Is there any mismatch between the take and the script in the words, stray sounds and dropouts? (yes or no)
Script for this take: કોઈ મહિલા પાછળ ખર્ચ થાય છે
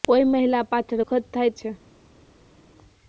no